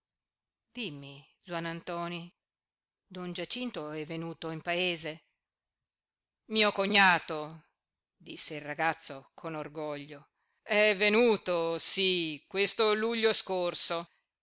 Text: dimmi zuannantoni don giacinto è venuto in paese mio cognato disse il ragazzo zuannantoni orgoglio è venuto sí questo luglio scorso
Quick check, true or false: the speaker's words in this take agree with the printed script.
false